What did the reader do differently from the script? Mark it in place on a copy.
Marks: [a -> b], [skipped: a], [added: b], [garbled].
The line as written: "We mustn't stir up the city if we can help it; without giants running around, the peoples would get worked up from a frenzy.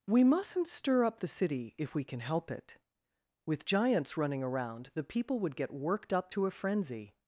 "We mustn't stir up the city if we can help it; [without -> with] giants running around, the [peoples -> people] would get worked up [from -> to] a frenzy.